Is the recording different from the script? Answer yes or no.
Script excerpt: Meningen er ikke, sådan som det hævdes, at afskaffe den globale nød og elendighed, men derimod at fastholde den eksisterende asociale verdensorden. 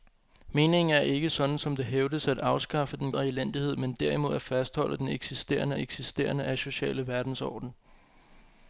yes